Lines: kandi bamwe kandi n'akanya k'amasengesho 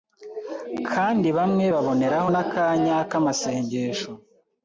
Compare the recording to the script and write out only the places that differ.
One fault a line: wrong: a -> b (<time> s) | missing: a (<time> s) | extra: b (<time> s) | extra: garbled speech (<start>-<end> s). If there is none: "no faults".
wrong: kandi -> baboneraho (1.7 s)